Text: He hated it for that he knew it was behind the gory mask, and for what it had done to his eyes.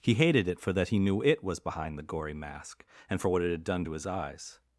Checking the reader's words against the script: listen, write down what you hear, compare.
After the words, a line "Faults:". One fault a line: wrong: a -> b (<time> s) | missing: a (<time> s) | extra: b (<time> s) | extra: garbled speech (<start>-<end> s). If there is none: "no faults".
He hated it for that he knew it was behind the gory mask, and for what it had done to his eyes.
Faults:
no faults